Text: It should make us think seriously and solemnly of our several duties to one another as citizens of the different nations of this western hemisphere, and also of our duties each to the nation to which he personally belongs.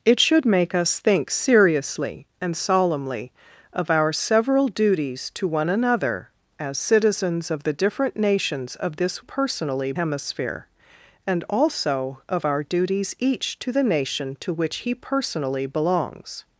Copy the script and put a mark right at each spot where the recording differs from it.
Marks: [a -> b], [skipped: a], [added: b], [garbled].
It should make us think seriously and solemnly of our several duties to one another as citizens of the different nations of this [western -> personally] hemisphere, and also of our duties each to the nation to which he personally belongs.